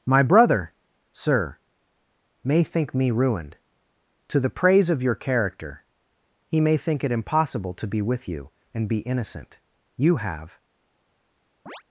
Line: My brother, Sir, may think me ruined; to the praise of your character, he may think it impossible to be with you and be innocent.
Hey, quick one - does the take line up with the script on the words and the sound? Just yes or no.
no